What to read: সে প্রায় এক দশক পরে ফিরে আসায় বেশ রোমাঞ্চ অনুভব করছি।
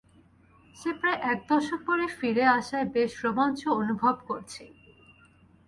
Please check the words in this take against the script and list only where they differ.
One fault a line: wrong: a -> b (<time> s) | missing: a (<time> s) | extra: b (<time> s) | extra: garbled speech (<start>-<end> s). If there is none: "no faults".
no faults